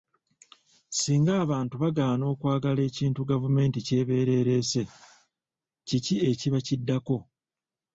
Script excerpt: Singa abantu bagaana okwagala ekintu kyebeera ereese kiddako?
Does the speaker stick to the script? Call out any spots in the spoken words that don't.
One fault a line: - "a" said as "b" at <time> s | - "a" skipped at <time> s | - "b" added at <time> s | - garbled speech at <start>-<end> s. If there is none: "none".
- "gavumenti" added at 3.3 s
- "kiki ekiba" added at 5.9 s